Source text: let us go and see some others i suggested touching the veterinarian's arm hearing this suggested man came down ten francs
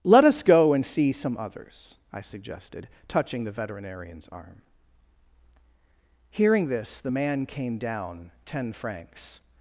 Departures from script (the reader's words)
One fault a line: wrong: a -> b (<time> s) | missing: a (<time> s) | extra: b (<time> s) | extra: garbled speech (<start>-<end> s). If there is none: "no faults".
wrong: suggested -> the (7.0 s)